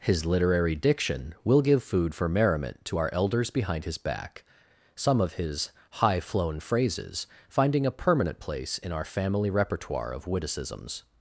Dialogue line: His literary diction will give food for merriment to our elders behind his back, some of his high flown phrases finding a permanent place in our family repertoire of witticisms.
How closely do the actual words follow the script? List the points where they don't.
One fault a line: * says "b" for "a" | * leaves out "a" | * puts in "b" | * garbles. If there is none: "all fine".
all fine